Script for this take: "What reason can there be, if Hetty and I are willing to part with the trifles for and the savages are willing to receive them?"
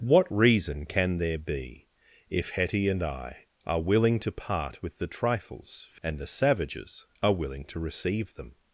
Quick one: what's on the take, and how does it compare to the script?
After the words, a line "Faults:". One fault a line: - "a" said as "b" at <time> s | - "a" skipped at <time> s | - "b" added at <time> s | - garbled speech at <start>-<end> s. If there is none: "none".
"What reason can there be, if Hetty and I are willing to part with the trifles for and the savages are willing to receive them?"
Faults:
none